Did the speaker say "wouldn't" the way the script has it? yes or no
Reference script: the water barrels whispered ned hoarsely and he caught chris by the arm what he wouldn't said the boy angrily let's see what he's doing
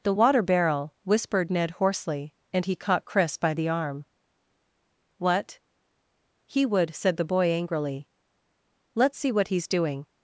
no